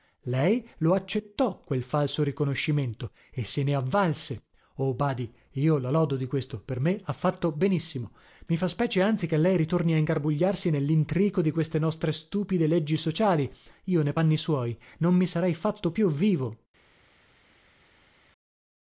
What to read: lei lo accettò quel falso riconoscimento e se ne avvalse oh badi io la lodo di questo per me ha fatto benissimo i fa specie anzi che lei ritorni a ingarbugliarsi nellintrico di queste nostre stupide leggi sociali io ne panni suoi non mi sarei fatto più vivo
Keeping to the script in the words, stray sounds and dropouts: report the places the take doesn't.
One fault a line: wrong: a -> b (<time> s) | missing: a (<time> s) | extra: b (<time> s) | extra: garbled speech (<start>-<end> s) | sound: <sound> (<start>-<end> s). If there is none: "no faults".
no faults